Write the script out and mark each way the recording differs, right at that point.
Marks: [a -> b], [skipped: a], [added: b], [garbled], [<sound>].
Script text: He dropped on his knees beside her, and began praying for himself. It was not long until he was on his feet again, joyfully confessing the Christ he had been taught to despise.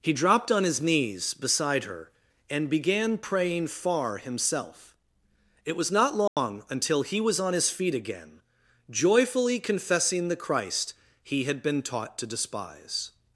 He dropped on his knees beside her, and began praying [for -> far] himself. It was not long [dropout] until he was on his feet again, joyfully confessing the Christ he had been taught to despise.